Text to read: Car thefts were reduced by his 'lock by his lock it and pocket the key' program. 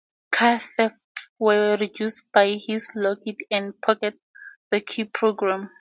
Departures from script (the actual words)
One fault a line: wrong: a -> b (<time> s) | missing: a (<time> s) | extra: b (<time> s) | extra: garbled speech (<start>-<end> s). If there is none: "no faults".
missing: by his lock (3.2 s)